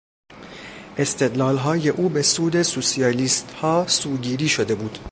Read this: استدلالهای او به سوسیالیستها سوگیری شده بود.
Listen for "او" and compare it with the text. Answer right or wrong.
right